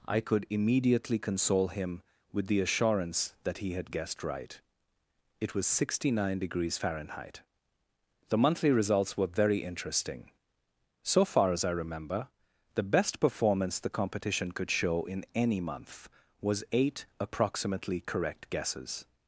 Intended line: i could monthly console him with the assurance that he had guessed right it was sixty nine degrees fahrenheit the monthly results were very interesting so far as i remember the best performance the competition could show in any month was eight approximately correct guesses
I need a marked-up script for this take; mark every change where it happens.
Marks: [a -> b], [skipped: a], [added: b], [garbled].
i could [monthly -> immediately] console him with the assurance that he had guessed right it was sixty nine degrees fahrenheit the monthly results were very interesting so far as i remember the best performance the competition could show in any month was eight approximately correct guesses